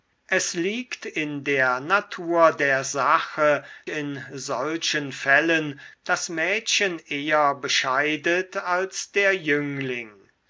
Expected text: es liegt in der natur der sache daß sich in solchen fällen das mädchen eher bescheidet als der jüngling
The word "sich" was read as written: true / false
false